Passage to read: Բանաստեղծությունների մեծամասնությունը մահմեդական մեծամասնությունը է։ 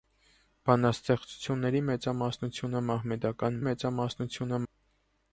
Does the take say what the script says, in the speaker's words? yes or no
yes